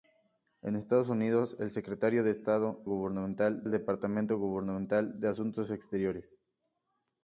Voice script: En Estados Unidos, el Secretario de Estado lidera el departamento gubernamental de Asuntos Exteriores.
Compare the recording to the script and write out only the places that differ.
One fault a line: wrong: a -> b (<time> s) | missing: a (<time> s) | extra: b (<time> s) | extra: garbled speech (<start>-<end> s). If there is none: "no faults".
wrong: lidera -> gubernamental (2.8 s)